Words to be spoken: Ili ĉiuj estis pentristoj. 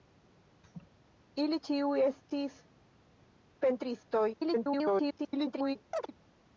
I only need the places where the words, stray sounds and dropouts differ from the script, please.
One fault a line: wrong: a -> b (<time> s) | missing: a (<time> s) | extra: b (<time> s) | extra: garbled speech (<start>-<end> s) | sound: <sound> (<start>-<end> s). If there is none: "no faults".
sound: laugh (0.6-0.9 s)
extra: garbled speech (4.3-5.8 s)
sound: chirp (5.9-6.1 s)